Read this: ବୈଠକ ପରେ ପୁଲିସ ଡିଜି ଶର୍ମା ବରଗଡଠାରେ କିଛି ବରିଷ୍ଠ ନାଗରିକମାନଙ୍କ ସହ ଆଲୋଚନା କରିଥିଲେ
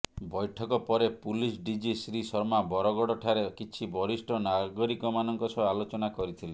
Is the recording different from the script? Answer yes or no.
yes